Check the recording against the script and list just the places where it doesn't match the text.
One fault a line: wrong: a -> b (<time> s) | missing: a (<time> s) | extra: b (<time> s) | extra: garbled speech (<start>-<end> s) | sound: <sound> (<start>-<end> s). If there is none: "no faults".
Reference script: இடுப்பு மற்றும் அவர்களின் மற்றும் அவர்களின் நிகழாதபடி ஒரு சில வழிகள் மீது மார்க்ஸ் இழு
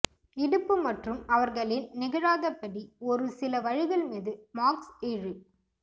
missing: மற்றும் அவர்களின் (1.9 s)